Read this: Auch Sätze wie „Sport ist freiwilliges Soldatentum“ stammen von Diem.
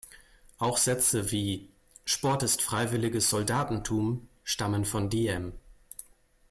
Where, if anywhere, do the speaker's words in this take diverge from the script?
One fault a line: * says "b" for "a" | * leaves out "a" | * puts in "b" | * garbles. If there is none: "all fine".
all fine